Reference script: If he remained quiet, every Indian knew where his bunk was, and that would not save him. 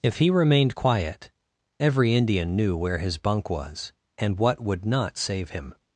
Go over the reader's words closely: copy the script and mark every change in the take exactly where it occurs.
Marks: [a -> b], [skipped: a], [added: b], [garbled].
If he remained quiet, every Indian knew where his bunk was, and [that -> what] would not save him.